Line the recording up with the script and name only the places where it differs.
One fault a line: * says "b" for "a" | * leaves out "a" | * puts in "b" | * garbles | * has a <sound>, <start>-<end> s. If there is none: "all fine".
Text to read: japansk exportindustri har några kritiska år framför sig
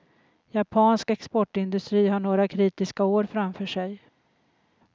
all fine